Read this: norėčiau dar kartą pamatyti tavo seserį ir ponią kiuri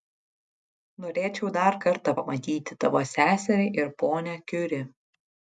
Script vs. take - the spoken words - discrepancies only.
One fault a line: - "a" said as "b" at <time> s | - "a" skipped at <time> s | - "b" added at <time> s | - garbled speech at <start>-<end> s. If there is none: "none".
none